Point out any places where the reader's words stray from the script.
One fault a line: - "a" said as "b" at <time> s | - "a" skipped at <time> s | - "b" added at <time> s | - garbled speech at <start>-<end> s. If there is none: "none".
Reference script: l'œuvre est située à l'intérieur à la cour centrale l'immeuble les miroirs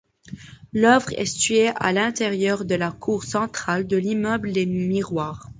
- "à" said as "de" at 2.6 s
- "de" added at 3.9 s